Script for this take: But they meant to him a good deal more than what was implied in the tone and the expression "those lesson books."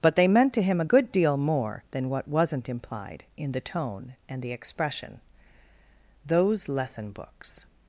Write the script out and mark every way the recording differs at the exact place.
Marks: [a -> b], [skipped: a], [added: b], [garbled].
But they meant to him a good deal more than what [was -> wasn't] implied in the tone and the expression "those lesson books."